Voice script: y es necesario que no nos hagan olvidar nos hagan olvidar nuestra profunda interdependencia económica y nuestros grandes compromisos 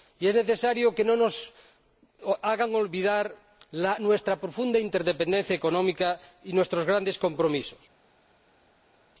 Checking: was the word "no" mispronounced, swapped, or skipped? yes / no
no